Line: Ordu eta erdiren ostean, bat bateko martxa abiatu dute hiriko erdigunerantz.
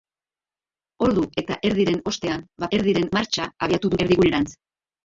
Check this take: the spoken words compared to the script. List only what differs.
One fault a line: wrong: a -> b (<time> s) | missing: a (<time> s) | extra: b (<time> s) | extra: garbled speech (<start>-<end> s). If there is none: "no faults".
wrong: bateko -> erdiren (2.8 s)
missing: dute hiriko (3.9 s)